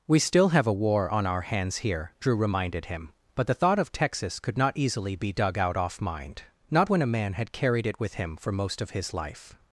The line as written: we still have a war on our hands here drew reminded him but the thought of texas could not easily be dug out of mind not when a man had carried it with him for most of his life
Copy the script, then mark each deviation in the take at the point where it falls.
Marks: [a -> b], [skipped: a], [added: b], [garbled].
we still have a war on our hands here drew reminded him but the thought of texas could not easily be dug out [of -> off] mind not when a man had carried it with him for most of his life